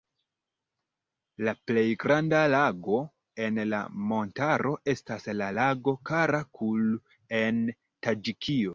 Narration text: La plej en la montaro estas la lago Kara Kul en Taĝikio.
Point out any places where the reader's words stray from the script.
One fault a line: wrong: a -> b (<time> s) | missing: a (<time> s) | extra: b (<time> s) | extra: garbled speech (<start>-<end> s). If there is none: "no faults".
extra: granda lago (2.0 s)